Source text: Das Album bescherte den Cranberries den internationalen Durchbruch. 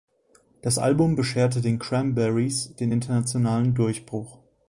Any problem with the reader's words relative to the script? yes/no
no